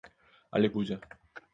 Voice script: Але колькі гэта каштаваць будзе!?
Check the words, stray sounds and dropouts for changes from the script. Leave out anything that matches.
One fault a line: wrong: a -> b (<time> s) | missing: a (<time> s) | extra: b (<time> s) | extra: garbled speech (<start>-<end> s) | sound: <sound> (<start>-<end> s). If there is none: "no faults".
missing: колькі гэта каштаваць (0.7 s)